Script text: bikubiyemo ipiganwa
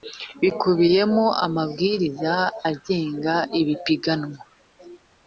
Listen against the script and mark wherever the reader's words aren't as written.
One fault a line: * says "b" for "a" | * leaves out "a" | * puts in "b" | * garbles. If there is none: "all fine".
* puts in "amabwiriza agenga"